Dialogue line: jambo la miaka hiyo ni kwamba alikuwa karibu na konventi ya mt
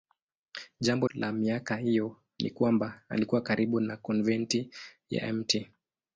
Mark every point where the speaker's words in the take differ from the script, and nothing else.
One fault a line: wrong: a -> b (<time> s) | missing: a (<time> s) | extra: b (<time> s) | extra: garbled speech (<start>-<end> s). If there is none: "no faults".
no faults